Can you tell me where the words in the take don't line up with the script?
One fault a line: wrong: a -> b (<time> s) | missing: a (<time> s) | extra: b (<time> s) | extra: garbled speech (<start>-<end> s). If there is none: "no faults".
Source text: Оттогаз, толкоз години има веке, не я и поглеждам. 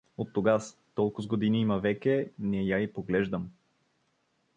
no faults